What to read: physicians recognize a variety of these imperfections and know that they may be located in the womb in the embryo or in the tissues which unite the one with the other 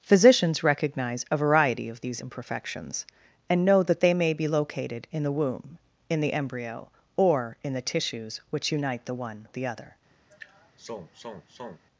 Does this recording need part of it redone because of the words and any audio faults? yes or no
yes